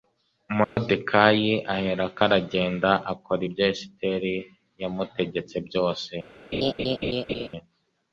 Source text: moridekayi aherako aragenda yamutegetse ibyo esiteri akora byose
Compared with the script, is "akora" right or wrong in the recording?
wrong